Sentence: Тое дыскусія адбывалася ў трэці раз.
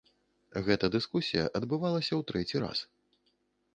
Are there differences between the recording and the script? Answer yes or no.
yes